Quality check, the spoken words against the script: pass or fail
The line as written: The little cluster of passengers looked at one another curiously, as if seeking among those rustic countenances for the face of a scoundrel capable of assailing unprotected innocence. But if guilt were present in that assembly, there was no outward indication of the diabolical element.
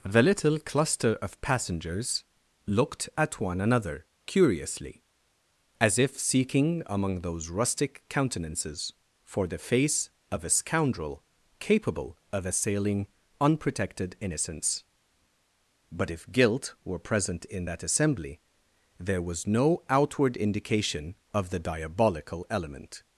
pass